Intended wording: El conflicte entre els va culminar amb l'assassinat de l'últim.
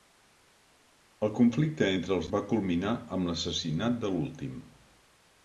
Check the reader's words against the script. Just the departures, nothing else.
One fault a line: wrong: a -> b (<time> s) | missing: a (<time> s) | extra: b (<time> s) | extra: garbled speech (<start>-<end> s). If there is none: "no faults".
no faults